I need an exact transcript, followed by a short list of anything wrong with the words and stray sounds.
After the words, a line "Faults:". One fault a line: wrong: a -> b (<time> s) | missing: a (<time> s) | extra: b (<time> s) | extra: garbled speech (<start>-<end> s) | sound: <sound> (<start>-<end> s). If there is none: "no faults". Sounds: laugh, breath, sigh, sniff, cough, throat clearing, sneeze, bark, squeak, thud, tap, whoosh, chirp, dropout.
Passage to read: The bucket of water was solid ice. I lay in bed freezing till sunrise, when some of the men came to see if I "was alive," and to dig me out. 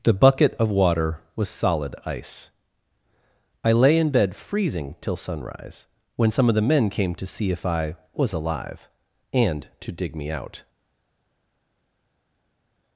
The bucket of water was solid ice. I lay in bed freezing till sunrise, when some of the men came to see if I "was alive," and to dig me out.
Faults:
no faults